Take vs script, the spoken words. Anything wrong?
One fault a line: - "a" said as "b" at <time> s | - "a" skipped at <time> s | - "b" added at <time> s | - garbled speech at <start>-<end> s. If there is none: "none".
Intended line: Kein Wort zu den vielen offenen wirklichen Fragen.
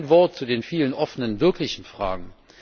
none